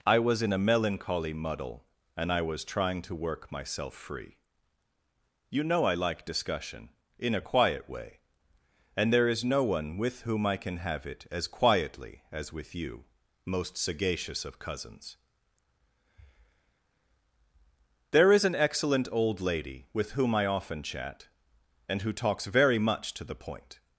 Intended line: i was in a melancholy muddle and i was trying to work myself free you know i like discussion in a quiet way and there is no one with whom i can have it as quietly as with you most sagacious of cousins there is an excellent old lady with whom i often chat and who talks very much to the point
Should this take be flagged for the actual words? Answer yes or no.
no